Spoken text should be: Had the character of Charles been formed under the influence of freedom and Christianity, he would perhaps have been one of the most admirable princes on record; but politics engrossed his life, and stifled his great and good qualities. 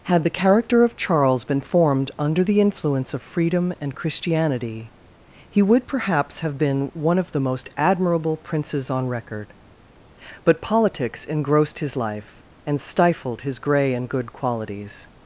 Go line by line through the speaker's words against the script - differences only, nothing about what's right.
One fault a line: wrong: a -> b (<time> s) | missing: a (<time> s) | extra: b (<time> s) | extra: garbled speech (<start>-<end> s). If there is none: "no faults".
wrong: great -> grey (13.6 s)